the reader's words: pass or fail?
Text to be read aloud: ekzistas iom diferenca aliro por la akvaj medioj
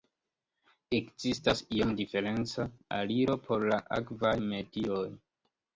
pass